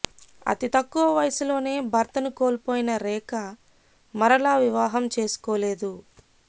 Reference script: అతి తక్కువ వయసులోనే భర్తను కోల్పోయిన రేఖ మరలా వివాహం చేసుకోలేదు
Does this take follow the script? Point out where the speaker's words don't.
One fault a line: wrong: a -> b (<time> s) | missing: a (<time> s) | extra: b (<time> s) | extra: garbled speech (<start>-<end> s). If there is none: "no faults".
no faults